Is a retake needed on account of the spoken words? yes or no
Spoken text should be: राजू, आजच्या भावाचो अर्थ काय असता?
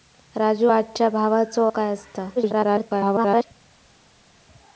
yes